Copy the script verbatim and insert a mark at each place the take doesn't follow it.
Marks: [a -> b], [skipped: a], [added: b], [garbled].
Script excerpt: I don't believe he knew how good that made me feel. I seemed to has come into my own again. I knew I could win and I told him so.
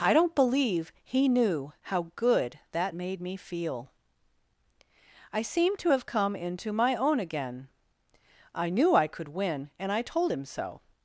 I don't believe he knew how good that made me feel. I seemed to [has -> have] come into my own again. I knew I could win and I told him so.